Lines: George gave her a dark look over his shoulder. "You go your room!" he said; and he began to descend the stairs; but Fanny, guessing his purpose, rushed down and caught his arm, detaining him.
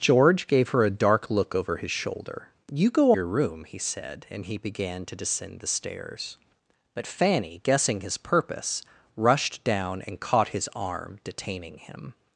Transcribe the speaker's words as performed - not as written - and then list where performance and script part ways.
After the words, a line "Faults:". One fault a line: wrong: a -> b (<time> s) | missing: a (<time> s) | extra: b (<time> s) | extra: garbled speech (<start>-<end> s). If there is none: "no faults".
George gave her a dark look over his shoulder. "You go your room!" he said; and he began to descend the stairs; but Fanny, guessing his purpose, rushed down and caught his arm, detaining him.
Faults:
no faults